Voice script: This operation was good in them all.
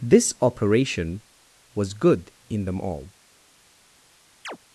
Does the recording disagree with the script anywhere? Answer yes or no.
no